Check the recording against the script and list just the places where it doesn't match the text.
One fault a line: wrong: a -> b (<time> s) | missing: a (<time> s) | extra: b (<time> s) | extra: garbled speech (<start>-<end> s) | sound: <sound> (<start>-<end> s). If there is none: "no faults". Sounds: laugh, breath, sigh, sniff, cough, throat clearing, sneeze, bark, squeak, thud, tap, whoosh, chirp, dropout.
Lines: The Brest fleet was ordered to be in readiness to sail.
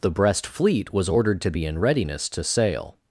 no faults